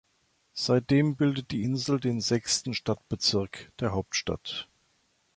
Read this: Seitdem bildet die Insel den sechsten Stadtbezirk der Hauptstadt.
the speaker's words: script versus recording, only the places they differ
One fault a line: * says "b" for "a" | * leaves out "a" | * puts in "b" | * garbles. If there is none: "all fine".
all fine